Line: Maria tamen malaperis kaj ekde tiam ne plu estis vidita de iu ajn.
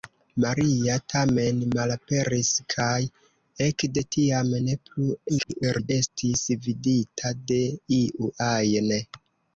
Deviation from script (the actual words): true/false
true